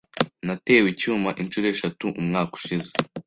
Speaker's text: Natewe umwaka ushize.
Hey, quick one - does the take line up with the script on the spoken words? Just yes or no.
no